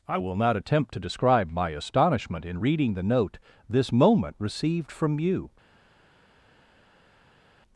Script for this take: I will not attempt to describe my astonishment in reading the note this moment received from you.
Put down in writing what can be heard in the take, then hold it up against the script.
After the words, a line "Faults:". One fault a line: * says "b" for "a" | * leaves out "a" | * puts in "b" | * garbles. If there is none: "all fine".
I will not attempt to describe my astonishment in reading the note this moment received from you.
Faults:
all fine